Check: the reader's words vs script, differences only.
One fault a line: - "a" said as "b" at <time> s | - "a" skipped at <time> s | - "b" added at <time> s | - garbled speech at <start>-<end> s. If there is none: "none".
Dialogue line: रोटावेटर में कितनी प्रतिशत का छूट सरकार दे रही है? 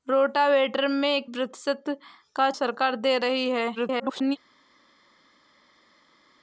- "कितनी" skipped at 1.2 s
- "छूट" skipped at 2.5 s
- garbled speech at 3.7-4.4 s